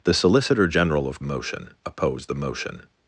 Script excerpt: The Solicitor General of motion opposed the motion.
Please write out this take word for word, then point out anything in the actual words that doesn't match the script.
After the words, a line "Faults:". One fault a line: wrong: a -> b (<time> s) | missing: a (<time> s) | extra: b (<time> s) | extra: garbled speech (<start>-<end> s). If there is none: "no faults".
The Solicitor General of motion opposed the motion.
Faults:
no faults